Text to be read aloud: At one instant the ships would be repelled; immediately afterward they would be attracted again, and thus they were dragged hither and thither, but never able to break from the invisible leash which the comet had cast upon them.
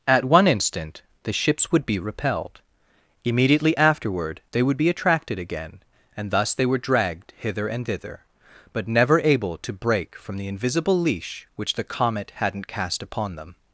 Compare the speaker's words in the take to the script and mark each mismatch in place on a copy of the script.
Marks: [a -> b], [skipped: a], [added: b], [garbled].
At one instant the ships would be repelled; immediately afterward they would be attracted again, and thus they were dragged hither and thither, but never able to break from the invisible leash which the comet [had -> hadn't] cast upon them.